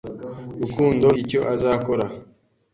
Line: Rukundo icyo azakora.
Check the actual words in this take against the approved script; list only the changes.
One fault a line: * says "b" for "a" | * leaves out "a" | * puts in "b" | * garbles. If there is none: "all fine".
all fine